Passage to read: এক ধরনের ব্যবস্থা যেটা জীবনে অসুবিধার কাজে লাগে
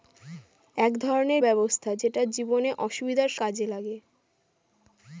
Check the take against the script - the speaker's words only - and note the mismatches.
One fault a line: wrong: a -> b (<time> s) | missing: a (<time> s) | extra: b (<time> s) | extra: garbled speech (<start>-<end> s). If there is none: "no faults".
no faults